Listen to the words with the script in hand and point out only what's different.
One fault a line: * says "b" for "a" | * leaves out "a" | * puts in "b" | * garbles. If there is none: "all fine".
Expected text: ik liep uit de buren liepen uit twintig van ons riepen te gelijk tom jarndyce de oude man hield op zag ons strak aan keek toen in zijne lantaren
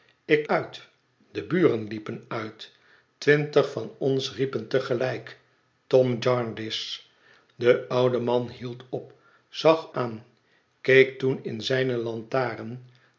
* leaves out "liep"
* leaves out "ons strak"